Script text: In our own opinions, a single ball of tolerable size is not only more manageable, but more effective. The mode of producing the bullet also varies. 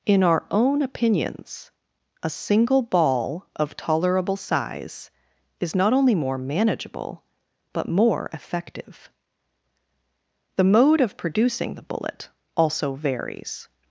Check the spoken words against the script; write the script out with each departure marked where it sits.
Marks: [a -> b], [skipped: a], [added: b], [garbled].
In our own opinions, a single ball of tolerable size is not only more manageable, but more effective. The mode of producing the bullet also varies.